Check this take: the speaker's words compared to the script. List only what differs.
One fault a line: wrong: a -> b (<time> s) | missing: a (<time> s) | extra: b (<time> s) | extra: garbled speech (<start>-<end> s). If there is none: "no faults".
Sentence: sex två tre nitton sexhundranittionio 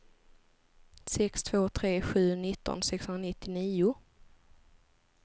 extra: sju (2.0 s)